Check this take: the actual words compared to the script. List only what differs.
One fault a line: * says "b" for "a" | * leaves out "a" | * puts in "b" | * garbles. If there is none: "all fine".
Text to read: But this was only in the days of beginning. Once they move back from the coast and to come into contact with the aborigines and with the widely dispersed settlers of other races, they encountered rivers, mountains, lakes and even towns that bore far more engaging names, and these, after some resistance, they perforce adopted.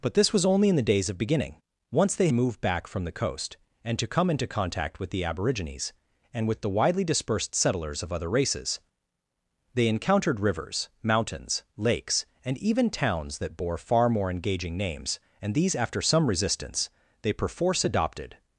all fine